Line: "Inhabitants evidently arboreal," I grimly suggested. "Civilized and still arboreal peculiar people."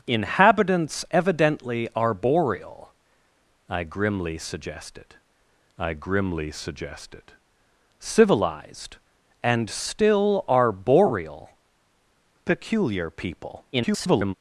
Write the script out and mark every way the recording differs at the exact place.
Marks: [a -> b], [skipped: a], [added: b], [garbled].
"Inhabitants evidently arboreal," I grimly suggested. [added: I grimly suggested] "Civilized and still arboreal peculiar people." [garbled]